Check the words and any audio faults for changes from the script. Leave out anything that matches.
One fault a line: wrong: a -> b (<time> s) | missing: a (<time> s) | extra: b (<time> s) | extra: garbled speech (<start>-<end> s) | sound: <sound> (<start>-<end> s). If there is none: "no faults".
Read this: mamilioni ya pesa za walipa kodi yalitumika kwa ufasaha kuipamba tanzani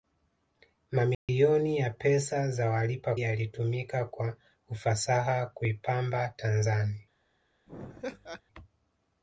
sound: dropout (1.1-1.3 s)
missing: kodi (3.1 s)
sound: laugh (7.7-8.4 s)